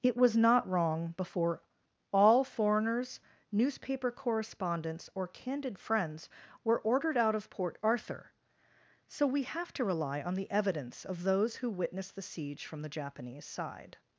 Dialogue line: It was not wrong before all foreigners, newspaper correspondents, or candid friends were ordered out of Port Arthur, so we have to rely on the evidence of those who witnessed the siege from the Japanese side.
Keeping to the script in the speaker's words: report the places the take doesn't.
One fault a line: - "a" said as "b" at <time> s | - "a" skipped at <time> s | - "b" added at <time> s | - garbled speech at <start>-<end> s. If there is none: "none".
none